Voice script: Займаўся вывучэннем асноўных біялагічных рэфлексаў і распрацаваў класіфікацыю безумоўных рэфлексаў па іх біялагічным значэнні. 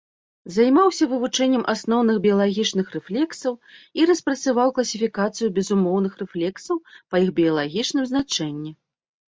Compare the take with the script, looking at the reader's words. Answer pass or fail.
pass